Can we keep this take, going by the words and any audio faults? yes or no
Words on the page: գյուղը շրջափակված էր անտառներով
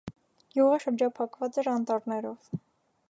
yes